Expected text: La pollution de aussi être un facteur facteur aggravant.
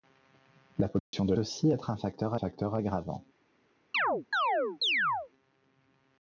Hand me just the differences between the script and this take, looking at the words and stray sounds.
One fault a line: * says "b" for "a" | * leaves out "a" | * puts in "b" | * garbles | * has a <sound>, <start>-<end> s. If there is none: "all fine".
* has a dropout, 1.0-1.1 s
* has a chirp, 3.9-5.3 s